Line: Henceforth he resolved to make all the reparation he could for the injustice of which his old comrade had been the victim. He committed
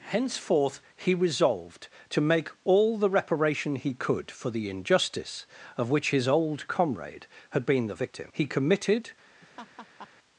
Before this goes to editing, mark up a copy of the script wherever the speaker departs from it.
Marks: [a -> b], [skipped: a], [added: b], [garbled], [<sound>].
Henceforth he resolved to make all the reparation he could for the injustice of which his old comrade had been the victim. He committed [laugh]